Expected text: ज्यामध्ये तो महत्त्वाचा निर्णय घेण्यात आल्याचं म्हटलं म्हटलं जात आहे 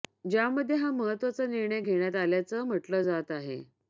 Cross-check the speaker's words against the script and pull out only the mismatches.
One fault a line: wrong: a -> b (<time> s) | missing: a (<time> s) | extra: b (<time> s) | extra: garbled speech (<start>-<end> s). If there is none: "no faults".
wrong: तो -> हा (0.8 s)
missing: म्हटलं (3.0 s)